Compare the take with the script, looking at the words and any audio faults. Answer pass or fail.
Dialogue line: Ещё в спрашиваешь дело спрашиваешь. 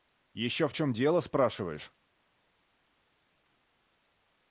fail